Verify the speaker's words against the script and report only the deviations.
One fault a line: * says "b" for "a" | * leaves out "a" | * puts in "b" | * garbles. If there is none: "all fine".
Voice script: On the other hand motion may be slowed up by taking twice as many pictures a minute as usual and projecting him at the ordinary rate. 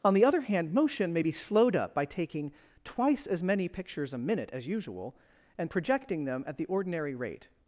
* says "them" for "him"